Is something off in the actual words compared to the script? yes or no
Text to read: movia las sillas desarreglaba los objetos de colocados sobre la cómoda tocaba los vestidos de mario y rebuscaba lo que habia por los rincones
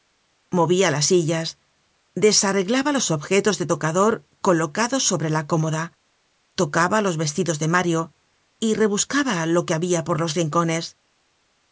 yes